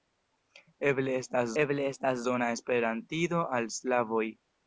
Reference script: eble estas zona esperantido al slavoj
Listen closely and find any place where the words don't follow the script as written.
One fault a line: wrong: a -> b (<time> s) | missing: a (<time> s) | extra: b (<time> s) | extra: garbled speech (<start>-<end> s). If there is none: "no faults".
extra: eble estas (1.6 s)